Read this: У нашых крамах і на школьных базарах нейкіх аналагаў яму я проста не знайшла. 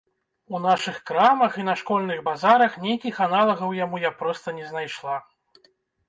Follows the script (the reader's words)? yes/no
yes